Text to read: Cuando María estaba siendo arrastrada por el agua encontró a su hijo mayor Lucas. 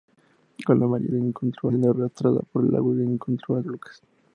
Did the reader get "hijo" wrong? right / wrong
wrong